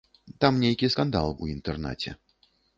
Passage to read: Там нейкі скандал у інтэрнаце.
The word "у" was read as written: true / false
true